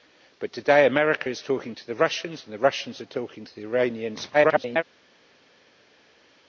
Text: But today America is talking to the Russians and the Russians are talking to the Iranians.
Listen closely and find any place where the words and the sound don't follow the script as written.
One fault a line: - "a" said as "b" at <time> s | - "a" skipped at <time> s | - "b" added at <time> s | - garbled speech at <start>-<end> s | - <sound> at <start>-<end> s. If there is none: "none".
- garbled speech at 4.3-4.8 s